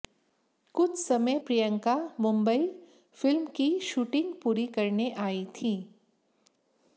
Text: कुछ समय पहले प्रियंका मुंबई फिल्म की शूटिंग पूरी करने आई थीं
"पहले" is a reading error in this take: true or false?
true